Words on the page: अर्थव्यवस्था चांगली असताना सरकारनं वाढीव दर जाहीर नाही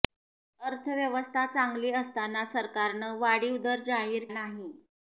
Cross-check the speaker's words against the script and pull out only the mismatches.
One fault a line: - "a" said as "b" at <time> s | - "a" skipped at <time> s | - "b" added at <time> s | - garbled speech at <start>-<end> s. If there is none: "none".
none